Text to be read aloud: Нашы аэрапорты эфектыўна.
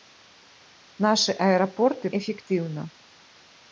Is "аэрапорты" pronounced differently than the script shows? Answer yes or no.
no